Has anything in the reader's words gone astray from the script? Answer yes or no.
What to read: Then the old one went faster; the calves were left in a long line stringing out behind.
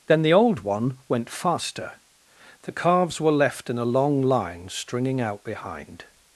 no